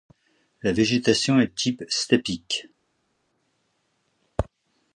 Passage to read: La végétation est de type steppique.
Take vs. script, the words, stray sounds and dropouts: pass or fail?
fail